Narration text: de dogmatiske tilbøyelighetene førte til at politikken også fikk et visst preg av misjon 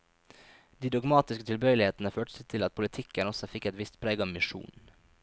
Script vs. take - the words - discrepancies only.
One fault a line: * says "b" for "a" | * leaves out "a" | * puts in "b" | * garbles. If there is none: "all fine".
all fine